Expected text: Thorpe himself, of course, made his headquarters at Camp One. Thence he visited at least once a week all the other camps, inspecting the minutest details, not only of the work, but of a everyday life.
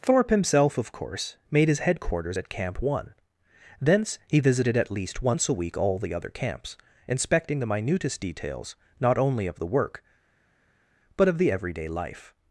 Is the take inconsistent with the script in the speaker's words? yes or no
yes